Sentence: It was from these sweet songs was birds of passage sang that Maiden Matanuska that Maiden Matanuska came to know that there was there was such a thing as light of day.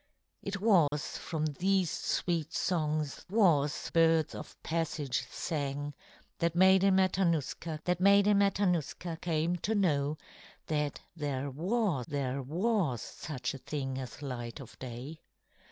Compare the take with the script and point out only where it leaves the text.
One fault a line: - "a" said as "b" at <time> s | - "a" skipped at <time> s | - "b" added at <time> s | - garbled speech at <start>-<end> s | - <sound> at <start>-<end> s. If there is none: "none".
- dropout at 0.9-0.9 s